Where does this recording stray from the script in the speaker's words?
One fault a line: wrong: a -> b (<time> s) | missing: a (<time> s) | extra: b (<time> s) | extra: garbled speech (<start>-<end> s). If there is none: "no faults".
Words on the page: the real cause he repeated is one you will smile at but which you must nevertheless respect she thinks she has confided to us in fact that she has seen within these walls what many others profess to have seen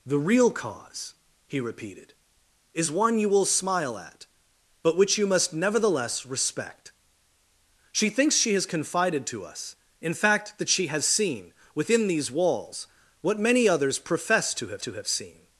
extra: to have (14.8 s)